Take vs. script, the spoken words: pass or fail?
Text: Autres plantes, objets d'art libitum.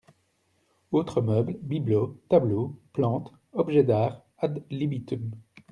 fail